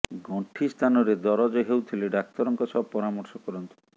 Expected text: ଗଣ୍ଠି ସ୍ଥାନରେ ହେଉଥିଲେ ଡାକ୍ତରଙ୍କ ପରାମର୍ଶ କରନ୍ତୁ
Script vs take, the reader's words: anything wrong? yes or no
yes